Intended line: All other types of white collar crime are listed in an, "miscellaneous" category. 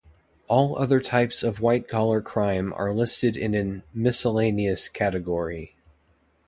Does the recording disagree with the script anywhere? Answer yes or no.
no